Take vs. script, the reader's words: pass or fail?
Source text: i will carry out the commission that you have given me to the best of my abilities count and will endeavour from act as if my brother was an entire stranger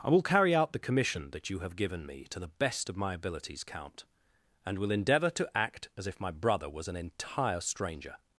fail